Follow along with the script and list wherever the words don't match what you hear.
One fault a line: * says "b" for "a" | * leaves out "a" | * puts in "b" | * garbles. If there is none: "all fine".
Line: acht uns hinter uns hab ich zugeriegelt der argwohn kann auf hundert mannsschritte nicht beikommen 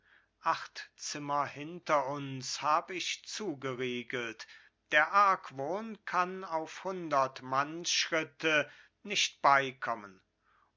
* says "zimmer" for "uns"